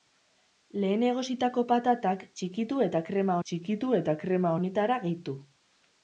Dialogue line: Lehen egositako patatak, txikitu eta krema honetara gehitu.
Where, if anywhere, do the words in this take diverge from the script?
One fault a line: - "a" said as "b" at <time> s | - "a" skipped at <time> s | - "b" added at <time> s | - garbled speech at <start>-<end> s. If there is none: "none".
- "txikitu eta krema" added at 3.5 s